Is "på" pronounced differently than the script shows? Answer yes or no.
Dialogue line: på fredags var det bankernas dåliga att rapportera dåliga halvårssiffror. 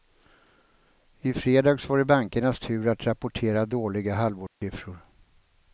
yes